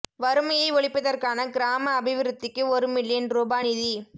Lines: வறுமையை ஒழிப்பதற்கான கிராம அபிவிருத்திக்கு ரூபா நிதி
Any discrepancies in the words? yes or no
yes